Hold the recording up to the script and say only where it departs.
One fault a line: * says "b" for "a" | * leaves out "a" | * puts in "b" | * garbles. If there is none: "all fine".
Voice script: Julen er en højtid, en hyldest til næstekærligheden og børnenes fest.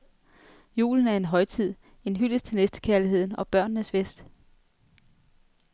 all fine